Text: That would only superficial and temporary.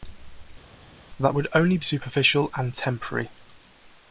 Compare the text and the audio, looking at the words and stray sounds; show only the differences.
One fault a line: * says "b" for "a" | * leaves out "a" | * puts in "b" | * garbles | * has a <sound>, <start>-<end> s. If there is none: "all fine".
all fine